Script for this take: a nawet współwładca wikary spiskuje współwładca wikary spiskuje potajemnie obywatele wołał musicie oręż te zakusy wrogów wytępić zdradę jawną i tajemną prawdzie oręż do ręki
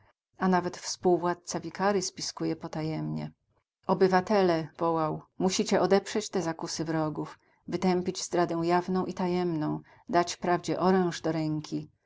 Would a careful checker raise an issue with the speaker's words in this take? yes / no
yes